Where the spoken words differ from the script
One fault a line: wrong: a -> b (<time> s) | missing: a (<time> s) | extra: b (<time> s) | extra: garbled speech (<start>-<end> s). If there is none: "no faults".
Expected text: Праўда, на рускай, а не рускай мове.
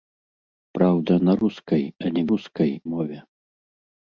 no faults